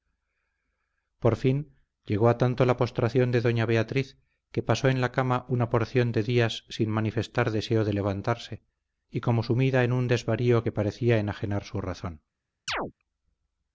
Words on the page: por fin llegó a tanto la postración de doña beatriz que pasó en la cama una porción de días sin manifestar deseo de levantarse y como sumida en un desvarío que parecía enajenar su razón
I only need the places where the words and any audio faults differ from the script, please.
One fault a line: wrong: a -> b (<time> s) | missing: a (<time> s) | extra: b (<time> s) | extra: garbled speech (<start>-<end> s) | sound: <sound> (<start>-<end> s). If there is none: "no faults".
sound: chirp (12.7-12.9 s)